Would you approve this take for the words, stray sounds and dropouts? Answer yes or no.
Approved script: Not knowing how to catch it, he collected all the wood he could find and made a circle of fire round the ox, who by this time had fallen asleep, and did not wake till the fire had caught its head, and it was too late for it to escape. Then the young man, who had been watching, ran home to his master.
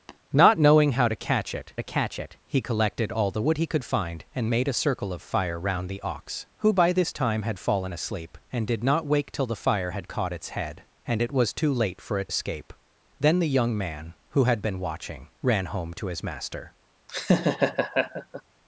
no